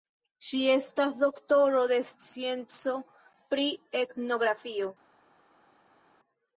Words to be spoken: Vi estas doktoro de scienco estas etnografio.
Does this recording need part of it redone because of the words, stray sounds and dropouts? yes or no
yes